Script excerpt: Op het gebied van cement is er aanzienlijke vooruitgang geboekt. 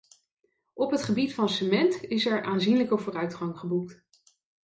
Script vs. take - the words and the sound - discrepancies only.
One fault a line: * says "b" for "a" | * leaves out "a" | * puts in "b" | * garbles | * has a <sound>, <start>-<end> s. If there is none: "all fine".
all fine